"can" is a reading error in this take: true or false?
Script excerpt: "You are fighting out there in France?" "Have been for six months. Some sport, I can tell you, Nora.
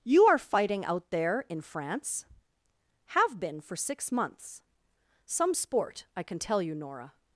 false